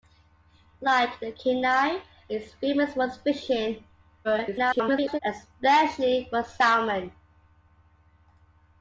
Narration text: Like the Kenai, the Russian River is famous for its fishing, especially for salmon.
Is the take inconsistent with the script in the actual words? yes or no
yes